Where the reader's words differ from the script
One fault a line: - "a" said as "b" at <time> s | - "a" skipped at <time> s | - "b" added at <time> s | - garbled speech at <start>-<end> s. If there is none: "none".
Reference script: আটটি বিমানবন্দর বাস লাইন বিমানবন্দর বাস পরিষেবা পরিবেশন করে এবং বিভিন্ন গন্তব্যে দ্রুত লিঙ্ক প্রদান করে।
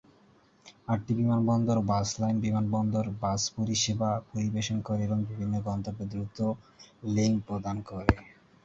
none